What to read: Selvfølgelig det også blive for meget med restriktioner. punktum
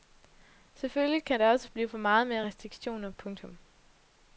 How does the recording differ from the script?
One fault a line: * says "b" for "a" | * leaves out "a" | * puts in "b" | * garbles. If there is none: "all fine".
* puts in "kan"